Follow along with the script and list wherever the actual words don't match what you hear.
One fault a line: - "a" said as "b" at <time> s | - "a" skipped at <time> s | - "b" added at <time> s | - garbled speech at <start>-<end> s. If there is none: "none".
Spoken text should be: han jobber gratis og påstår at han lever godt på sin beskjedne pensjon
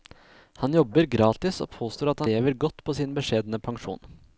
- "han" skipped at 2.2 s